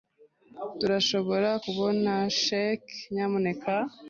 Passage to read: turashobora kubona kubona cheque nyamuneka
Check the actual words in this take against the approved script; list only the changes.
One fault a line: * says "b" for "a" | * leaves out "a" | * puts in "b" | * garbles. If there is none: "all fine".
* leaves out "kubona"